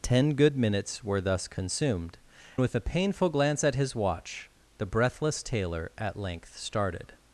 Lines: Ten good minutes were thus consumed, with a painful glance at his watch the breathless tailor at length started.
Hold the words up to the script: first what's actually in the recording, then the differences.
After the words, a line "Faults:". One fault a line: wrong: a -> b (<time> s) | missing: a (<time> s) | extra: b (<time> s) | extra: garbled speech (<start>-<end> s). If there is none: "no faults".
Ten good minutes were thus consumed, with a painful glance at his watch the breathless tailor at length started.
Faults:
no faults